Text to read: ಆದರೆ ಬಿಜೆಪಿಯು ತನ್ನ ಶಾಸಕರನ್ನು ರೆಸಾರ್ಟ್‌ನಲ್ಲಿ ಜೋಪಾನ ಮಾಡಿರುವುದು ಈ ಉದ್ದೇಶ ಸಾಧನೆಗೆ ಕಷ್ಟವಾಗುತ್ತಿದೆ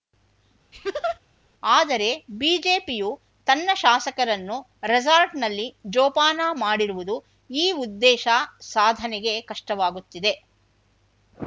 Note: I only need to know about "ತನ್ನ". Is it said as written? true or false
true